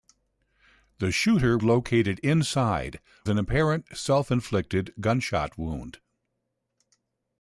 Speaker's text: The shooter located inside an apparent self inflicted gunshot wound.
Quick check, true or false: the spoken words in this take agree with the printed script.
true